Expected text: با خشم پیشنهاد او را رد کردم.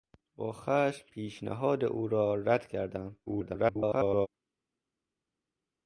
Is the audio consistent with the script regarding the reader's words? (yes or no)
no